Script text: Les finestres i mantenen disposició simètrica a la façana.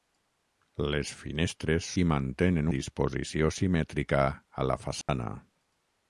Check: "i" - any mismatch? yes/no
no